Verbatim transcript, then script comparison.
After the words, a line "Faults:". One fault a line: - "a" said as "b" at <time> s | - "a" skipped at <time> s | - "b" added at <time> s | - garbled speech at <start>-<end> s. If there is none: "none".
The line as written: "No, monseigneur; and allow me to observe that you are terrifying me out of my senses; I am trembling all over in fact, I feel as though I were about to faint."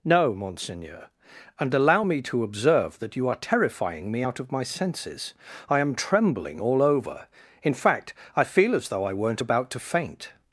"No, monseigneur; and allow me to observe that you are terrifying me out of my senses; I am trembling all over in fact, I feel as though I weren't about to faint."
Faults:
- "were" said as "weren't" at 9.1 s